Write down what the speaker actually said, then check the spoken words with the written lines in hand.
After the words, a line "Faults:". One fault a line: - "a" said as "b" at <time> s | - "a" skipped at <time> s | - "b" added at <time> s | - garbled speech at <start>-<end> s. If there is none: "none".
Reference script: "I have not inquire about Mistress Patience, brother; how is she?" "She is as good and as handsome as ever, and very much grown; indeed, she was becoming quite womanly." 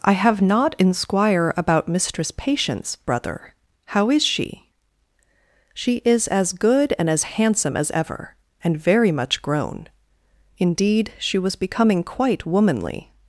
"I have not inquire about Mistress Patience, brother; how is she?" "She is as good and as handsome as ever, and very much grown; indeed, she was becoming quite womanly."
Faults:
none